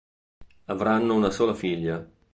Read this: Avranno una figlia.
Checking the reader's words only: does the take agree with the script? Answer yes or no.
no